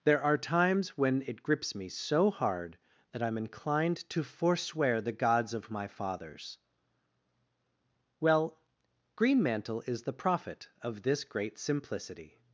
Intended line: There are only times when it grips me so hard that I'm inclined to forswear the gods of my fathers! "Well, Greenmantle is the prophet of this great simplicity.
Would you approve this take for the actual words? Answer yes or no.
no